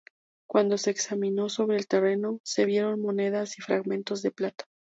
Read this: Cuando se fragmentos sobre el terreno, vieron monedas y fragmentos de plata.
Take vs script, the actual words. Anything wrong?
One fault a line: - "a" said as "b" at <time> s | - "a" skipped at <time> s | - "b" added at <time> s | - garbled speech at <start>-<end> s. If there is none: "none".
- "fragmentos" said as "examinó" at 0.9 s
- "se" added at 2.4 s